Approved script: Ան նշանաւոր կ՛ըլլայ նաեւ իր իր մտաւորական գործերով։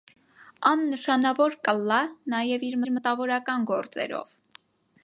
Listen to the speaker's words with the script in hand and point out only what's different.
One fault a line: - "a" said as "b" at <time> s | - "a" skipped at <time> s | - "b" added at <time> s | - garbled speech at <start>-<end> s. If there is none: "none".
none